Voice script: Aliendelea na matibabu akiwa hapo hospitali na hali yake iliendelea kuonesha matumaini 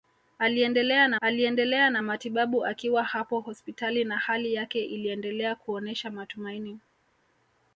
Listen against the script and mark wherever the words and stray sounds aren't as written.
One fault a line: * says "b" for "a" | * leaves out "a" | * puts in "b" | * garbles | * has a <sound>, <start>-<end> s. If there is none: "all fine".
* puts in "aliendelea na"